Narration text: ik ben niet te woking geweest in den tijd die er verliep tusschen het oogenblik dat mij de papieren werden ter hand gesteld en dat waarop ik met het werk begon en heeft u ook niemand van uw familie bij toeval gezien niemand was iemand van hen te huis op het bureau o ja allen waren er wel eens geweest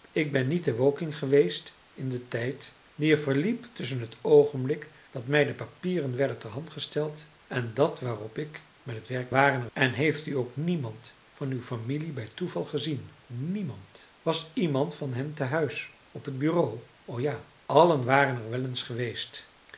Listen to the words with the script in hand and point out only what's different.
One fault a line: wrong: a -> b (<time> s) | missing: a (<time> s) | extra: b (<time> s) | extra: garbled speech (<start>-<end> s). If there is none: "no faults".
wrong: begon -> waren (9.3 s)